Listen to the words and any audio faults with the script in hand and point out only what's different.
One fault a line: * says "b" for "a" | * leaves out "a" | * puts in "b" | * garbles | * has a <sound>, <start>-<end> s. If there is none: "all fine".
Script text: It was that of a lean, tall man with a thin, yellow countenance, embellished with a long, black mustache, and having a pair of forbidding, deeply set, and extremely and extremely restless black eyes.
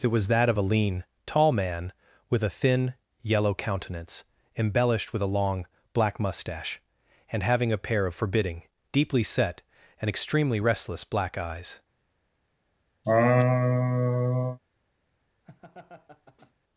* leaves out "and extremely"
* has a laugh, 13.0-14.6 s
* has a laugh, 15.4-16.5 s